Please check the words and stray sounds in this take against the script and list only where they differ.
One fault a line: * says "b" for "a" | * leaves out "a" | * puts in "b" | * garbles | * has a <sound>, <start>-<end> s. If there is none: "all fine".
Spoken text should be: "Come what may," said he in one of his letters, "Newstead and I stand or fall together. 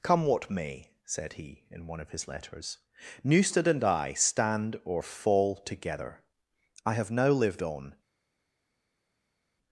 * puts in "I have now lived on"